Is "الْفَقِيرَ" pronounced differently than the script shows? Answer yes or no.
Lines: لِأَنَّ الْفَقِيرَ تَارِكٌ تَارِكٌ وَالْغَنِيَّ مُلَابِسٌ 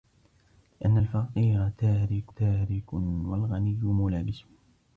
no